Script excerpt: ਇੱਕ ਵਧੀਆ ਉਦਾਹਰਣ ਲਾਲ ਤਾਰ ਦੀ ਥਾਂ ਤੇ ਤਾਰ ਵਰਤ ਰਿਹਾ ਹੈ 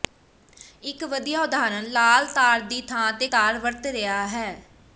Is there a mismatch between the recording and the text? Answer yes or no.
no